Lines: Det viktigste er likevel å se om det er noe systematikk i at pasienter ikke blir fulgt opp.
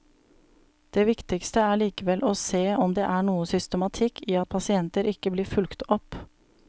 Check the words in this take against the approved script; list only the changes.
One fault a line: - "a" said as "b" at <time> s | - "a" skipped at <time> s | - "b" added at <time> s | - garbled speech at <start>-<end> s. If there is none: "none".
none